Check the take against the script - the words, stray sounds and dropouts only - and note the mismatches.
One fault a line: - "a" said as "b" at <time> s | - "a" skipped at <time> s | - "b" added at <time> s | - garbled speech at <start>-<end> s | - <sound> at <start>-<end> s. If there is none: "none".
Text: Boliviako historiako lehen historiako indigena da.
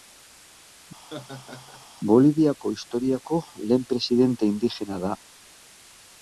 - laugh at 1.0-1.8 s
- "historiako" said as "presidente" at 3.9 s